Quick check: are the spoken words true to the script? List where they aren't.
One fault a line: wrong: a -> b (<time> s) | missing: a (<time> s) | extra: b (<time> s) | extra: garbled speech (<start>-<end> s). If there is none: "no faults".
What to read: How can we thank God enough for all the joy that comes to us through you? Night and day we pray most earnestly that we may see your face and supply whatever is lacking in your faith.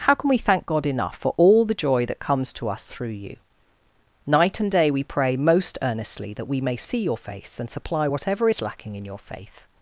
no faults